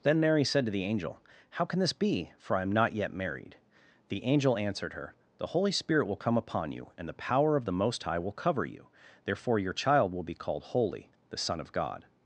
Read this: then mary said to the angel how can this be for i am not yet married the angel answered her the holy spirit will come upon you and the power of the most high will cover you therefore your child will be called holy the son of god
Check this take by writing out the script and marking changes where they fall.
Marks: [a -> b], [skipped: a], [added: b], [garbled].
then mary said to the angel how can this be for i am not yet married the angel answered her the holy spirit will come upon you and the power of the most high will cover you therefore your child will be called holy the son of god